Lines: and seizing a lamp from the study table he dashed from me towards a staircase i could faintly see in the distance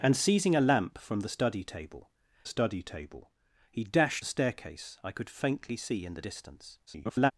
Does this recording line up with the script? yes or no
no